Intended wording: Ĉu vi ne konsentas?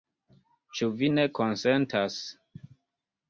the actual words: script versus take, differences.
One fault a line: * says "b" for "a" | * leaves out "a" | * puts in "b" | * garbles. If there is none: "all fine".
all fine